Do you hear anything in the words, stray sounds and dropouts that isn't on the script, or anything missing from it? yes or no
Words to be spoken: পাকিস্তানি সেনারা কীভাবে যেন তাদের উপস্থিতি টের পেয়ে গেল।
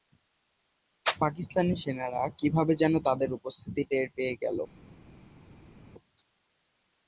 no